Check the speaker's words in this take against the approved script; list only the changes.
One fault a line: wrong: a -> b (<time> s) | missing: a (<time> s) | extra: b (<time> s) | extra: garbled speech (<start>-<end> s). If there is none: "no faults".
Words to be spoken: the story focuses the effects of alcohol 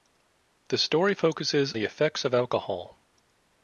no faults